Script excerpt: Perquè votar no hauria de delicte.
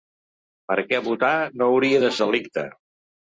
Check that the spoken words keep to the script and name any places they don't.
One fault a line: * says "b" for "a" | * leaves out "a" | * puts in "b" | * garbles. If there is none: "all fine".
all fine